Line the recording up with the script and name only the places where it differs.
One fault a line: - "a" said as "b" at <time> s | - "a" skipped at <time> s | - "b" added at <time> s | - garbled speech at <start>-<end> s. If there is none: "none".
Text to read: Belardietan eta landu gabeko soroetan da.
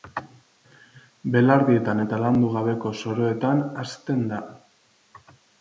- "hazten" added at 3.9 s